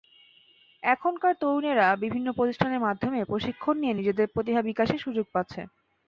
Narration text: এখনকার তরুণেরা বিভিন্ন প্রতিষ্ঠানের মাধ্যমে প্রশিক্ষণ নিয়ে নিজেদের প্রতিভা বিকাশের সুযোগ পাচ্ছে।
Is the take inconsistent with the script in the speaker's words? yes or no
no